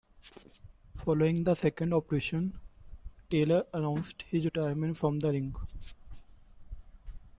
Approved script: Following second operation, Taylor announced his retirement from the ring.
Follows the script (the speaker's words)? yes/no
no